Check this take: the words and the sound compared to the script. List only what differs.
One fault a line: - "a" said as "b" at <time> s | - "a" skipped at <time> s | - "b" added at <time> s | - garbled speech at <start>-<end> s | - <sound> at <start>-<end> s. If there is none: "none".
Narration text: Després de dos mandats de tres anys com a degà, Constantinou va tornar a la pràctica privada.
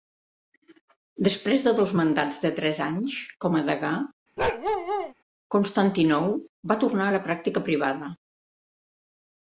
- bark at 4.4-5.1 s